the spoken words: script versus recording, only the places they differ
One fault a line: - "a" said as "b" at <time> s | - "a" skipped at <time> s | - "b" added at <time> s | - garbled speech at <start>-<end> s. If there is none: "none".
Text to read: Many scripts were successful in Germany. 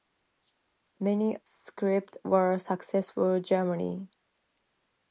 none